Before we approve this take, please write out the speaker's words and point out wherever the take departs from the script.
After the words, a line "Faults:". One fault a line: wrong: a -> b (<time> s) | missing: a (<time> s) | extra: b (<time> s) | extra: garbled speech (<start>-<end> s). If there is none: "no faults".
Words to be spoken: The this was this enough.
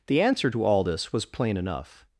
The answer to all this was plain enough.
Faults:
extra: answer to all (0.2 s)
wrong: this -> plain (1.3 s)